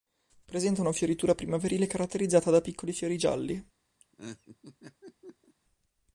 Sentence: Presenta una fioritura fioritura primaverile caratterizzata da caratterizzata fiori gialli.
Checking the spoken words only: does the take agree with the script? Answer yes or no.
no